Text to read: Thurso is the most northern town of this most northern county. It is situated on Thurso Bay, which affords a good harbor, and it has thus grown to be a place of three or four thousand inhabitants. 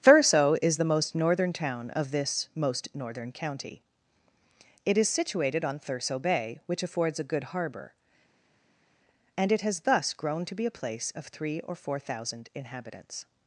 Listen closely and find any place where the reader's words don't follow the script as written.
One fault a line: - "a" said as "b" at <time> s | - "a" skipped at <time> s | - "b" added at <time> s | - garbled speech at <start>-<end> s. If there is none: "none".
none